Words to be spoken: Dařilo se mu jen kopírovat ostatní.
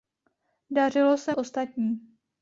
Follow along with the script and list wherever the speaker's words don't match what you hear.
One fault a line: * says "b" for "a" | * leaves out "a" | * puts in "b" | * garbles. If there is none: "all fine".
* leaves out "mu jen kopírovat"